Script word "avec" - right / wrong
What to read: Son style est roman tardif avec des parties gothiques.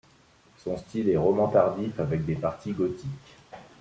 right